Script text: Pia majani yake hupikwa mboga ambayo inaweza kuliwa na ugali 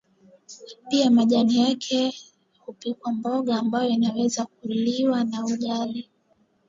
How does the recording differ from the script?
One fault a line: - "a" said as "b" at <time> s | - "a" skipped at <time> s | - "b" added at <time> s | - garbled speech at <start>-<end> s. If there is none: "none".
none